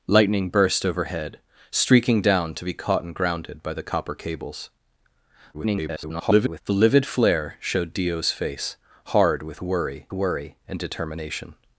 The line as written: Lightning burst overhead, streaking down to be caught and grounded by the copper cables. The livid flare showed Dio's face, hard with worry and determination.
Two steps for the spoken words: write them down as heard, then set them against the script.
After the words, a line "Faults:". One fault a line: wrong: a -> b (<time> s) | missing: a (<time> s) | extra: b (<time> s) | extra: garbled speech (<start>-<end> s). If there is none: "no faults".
Lightning burst overhead, streaking down to be caught and grounded by the copper cables. [garbled] The livid flare showed Dio's face, hard with worry worry and determination.
Faults:
extra: garbled speech (5.5-6.6 s)
extra: worry (10.1 s)